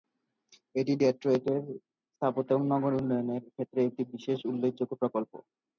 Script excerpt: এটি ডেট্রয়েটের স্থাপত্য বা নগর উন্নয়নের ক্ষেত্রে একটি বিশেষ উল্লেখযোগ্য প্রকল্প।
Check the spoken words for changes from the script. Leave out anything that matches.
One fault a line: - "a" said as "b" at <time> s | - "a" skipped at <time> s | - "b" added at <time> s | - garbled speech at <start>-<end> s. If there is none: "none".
- "বা" said as "এবং" at 2.5 s